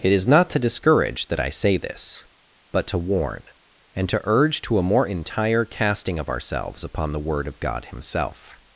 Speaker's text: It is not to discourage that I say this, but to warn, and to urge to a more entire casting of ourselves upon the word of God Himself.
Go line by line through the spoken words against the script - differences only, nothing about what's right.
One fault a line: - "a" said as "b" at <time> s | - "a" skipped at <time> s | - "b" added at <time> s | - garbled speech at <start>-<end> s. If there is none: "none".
none